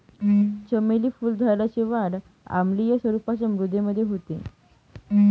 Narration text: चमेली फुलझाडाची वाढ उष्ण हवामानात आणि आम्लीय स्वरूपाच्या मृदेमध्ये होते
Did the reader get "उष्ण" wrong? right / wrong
wrong